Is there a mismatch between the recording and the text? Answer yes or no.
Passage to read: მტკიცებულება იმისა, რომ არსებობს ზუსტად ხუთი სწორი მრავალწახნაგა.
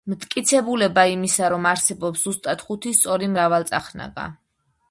no